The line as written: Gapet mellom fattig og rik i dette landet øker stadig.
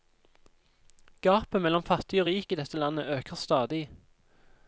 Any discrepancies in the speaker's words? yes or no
no